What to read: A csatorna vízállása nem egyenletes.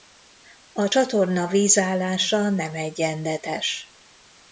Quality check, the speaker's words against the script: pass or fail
pass